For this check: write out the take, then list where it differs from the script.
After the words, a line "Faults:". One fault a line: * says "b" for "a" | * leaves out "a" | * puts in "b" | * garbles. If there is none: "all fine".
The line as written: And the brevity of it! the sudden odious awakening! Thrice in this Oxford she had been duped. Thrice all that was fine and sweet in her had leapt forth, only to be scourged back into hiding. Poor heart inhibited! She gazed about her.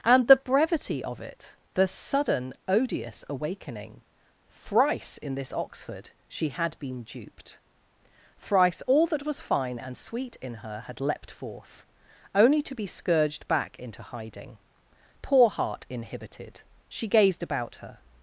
And the brevity of it! the sudden odious awakening! Thrice in this Oxford she had been duped. Thrice all that was fine and sweet in her had leapt forth, only to be scourged back into hiding. Poor heart inhibited! She gazed about her.
Faults:
all fine